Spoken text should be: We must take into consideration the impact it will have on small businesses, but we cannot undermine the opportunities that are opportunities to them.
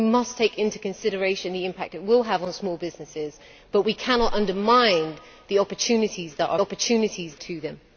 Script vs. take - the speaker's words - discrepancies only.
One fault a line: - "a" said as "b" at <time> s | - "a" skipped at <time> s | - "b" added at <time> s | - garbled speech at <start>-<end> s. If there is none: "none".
none